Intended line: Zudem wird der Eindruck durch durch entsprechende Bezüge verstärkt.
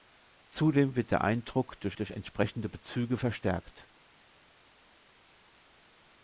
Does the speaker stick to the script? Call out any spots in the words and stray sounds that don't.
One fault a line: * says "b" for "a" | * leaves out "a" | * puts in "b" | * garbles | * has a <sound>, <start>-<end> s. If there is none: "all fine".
all fine